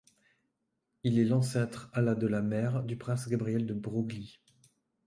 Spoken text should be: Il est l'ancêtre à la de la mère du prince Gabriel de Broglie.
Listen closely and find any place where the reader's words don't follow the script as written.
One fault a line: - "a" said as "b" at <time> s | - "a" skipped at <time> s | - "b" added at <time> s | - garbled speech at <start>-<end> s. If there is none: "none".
none